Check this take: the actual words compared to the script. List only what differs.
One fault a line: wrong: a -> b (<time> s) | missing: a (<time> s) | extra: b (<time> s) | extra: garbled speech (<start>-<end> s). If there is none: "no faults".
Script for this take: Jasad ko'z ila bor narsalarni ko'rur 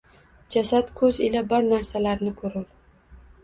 no faults